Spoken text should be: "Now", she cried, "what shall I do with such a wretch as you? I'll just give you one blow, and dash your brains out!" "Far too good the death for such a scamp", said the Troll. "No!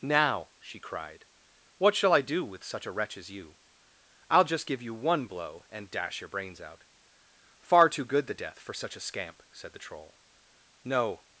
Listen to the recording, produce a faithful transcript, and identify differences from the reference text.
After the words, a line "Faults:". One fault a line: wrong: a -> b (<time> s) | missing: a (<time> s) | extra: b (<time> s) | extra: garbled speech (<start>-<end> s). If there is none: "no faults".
"Now", she cried, "what shall I do with such a wretch as you? I'll just give you one blow, and dash your brains out!" "Far too good the death for such a scamp", said the Troll. "No!
Faults:
no faults